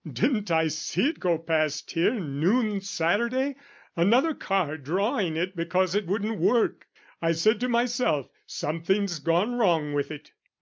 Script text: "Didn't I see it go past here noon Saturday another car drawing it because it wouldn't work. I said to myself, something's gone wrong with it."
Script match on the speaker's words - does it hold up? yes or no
yes